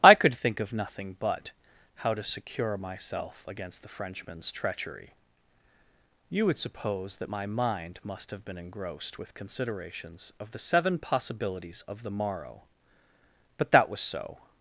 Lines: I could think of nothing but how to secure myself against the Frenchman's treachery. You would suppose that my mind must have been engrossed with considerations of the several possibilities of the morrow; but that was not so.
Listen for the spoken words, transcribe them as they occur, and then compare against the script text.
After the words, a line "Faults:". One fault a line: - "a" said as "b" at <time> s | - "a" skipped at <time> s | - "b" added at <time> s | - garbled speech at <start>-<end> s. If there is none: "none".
I could think of nothing but how to secure myself against the Frenchman's treachery. You would suppose that my mind must have been engrossed with considerations of the seven possibilities of the morrow; but that was so.
Faults:
- "several" said as "seven" at 10.6 s
- "not" skipped at 14.0 s